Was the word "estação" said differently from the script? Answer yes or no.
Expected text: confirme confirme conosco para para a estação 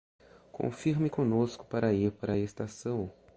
no